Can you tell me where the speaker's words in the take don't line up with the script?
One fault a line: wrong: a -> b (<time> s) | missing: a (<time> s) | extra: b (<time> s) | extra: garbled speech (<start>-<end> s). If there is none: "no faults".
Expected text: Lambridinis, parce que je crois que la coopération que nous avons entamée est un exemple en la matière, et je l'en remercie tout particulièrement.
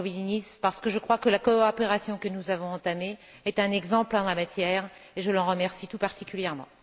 no faults